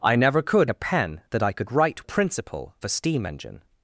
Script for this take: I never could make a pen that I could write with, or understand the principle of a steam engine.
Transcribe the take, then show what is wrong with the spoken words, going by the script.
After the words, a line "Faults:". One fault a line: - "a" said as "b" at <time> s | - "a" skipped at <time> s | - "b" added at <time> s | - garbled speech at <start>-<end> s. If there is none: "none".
I never could a pen that I could write the principle a steam engine.
Faults:
- "make" skipped at 0.7 s
- "with or understand" skipped at 2.1 s
- "of" skipped at 2.7 s